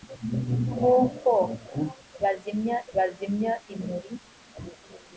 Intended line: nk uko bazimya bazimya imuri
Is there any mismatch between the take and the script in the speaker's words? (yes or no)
no